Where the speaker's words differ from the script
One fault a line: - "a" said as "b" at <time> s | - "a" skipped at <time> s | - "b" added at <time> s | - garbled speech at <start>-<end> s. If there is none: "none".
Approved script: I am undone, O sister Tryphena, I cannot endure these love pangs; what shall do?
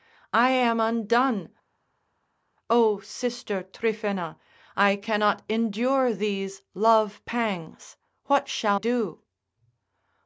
none